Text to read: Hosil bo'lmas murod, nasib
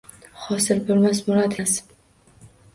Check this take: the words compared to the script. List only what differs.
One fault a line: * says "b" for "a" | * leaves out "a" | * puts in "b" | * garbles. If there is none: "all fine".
all fine